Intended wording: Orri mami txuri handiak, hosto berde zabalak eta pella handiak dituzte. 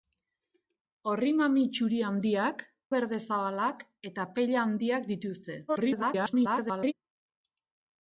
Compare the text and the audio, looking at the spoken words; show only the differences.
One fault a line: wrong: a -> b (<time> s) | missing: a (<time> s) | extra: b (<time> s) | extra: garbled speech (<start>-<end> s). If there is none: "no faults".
missing: hosto (2.6 s)
extra: garbled speech (5.7-6.9 s)